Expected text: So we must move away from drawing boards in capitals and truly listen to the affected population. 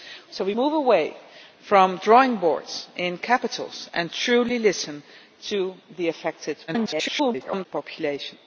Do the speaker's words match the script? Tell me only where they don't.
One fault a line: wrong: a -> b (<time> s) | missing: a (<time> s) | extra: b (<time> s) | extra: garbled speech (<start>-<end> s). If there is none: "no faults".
missing: must (0.5 s)
extra: garbled speech (6.7-7.7 s)